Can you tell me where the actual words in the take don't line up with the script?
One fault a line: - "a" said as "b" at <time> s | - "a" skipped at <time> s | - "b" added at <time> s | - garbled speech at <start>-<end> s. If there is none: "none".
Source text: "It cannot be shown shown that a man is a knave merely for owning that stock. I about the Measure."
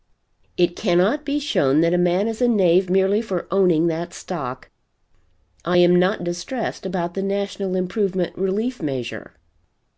- "shown" skipped at 1.8 s
- "am not distressed" added at 5.8 s
- "National Improvement Relief" added at 7.2 s